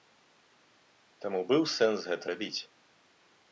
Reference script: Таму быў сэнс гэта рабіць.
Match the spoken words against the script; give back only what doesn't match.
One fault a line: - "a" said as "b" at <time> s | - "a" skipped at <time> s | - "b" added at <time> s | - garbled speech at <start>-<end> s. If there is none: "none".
none